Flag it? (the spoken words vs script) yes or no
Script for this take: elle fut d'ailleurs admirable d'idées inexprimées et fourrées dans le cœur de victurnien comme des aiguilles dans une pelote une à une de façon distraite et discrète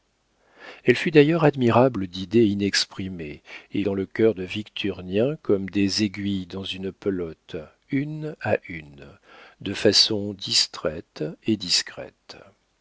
yes